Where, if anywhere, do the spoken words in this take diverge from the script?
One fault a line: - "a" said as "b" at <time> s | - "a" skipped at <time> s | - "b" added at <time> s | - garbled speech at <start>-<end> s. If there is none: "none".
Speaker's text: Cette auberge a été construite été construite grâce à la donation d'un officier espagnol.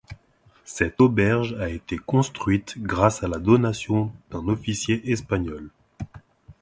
- "été construite" skipped at 2.7 s